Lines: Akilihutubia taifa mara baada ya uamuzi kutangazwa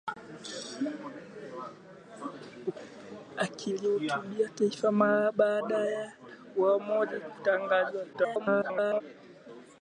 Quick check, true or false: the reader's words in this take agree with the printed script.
false